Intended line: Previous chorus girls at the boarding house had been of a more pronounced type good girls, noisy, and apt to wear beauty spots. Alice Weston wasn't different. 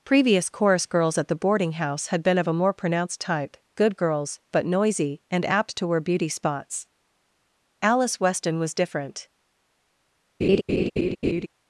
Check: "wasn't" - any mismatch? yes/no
yes